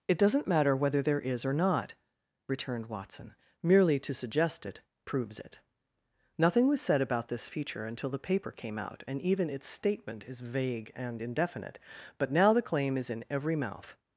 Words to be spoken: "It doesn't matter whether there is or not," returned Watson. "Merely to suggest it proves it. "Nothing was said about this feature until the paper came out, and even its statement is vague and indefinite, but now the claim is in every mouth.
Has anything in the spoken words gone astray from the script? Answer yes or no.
no